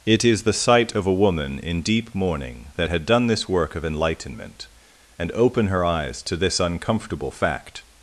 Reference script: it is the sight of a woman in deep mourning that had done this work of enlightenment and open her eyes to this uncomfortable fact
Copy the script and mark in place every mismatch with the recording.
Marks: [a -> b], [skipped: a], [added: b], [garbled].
it is the sight of a woman in deep mourning that had done this work of enlightenment and open her eyes to this uncomfortable fact